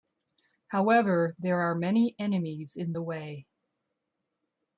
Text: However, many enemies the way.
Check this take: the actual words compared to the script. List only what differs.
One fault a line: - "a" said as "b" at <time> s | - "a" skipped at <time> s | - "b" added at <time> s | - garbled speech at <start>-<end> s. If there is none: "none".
- "there are" added at 1.4 s
- "in" added at 2.8 s